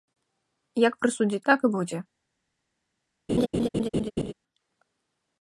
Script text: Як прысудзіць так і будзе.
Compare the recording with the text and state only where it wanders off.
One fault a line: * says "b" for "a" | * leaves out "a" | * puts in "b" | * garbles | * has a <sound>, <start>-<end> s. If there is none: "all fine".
* has a laugh, 3.3-4.3 s